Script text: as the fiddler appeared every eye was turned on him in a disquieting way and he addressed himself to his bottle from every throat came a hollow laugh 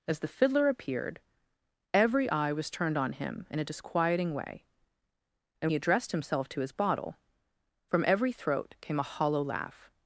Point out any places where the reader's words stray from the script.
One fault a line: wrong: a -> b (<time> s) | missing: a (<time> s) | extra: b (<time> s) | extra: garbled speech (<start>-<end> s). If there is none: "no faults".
no faults